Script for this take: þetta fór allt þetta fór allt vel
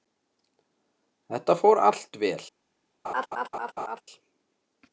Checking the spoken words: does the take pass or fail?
fail